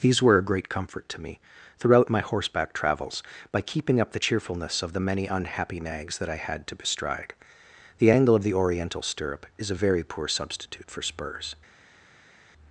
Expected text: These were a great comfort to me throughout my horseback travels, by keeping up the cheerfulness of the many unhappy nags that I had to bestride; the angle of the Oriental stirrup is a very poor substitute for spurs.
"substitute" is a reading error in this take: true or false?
false